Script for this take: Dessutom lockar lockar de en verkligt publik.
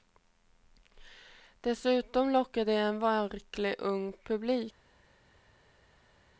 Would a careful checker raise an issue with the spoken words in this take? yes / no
yes